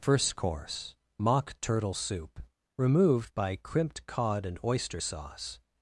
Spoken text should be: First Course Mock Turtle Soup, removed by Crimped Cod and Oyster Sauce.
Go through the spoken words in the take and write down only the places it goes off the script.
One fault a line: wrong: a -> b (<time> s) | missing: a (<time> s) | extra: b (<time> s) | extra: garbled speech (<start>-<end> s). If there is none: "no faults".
no faults